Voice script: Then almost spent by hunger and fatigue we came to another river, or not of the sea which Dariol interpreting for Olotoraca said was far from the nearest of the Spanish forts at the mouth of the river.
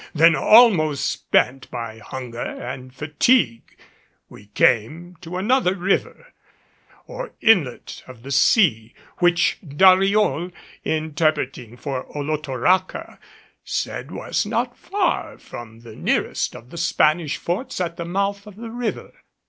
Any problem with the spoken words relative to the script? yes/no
yes